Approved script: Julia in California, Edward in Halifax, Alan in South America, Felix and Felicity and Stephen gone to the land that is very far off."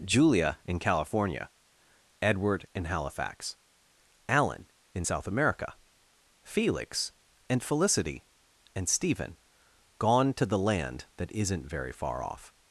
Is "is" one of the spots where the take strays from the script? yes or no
yes